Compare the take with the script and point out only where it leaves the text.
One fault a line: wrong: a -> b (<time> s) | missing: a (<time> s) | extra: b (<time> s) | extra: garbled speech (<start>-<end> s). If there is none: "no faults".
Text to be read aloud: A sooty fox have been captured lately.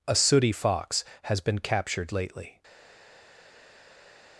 wrong: have -> has (1.2 s)